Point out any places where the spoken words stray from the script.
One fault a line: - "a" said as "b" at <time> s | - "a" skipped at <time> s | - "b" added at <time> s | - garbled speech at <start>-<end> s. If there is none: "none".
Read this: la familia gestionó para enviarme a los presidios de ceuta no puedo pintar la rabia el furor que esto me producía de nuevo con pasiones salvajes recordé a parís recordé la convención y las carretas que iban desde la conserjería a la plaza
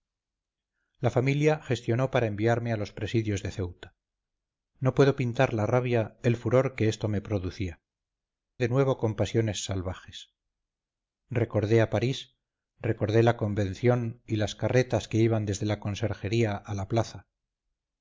none